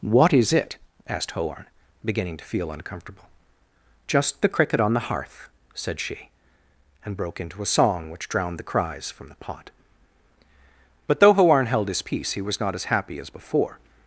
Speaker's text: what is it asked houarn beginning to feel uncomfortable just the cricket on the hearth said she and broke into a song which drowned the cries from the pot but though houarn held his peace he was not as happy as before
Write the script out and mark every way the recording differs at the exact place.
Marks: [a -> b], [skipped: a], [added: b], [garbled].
what is it asked houarn beginning to feel uncomfortable just the cricket on the hearth said she and broke into a song which drowned the cries from the pot but though houarn held his peace he was not as happy as before